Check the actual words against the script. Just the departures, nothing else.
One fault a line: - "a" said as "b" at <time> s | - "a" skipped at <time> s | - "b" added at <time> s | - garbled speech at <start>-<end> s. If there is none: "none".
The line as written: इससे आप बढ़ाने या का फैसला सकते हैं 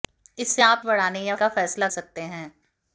none